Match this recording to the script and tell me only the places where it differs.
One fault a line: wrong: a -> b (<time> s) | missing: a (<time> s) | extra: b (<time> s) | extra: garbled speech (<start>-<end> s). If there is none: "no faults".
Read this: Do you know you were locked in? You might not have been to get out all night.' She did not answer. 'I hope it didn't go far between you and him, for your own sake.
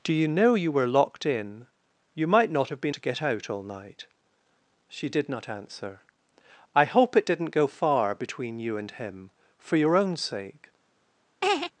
no faults